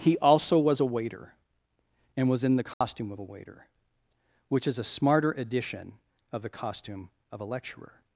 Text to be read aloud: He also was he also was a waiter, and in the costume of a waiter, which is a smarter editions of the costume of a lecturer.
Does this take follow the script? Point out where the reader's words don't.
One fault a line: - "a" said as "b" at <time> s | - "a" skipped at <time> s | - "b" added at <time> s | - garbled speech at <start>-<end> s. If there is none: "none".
- "he also was" skipped at 0.8 s
- "was" added at 2.3 s
- "editions" said as "edition" at 5.3 s